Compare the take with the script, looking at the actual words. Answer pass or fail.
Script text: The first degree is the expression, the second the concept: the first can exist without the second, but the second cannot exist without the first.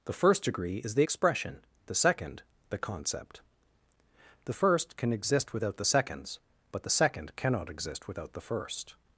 fail